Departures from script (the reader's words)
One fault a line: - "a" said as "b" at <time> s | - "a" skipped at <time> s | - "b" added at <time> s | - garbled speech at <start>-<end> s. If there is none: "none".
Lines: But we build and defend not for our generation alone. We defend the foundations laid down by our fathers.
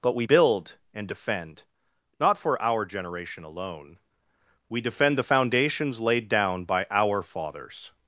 none